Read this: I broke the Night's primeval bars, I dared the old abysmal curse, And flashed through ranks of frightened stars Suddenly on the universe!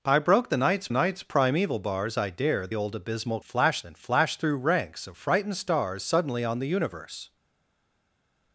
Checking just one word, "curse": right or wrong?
wrong